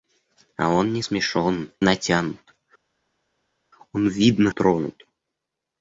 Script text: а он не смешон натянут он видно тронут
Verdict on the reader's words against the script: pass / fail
pass